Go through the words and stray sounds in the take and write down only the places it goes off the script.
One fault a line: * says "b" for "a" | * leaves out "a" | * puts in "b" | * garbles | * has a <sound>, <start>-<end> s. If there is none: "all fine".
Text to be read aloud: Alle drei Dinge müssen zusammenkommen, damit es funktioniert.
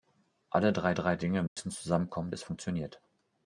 * puts in "drei"
* has a dropout, 1.5-1.6 s
* leaves out "damit"